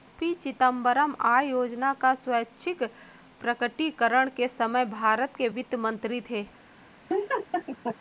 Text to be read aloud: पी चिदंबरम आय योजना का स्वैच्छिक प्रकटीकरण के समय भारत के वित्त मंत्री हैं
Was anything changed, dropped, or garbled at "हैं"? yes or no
yes